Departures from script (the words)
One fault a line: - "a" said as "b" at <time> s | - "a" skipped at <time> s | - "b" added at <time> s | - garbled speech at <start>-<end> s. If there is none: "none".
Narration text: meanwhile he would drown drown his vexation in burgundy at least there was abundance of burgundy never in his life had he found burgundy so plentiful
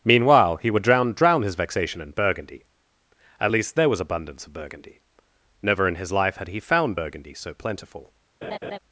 none